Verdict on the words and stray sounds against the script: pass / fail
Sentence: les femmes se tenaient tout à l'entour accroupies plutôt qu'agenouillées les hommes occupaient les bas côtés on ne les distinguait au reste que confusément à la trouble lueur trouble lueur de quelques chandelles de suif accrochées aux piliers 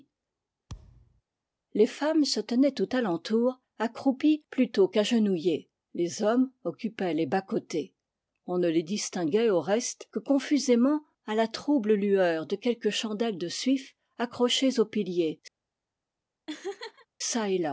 fail